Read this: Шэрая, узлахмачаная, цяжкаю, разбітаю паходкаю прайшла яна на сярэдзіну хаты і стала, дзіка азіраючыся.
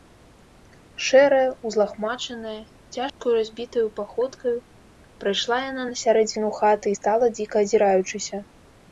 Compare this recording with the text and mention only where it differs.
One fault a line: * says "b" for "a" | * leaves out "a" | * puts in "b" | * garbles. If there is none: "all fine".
all fine